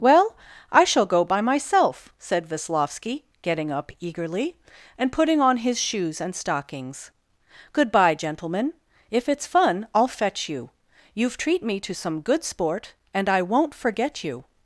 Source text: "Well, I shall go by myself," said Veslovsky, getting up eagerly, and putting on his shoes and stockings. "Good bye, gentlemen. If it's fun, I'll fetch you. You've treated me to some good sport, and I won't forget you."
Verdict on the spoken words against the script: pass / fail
fail